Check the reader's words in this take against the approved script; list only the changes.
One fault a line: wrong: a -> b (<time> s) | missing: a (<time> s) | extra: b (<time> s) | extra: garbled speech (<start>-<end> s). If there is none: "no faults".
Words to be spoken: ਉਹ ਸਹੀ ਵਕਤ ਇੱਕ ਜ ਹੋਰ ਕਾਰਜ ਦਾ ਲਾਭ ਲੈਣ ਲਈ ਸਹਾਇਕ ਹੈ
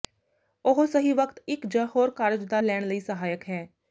missing: ਲਾਭ (2.6 s)